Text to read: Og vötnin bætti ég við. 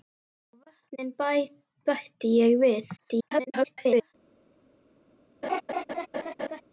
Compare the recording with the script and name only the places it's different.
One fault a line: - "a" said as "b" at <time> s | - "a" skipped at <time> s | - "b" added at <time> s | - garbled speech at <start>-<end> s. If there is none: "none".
- garbled speech at 3.0-4.1 s